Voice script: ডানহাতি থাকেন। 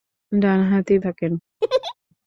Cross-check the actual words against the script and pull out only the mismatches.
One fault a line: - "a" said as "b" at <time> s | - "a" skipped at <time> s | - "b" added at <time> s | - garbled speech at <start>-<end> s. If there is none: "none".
none